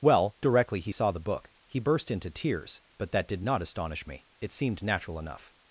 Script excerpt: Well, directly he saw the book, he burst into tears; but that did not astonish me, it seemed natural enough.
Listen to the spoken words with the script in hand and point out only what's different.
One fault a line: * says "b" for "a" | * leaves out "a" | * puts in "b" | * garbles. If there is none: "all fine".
all fine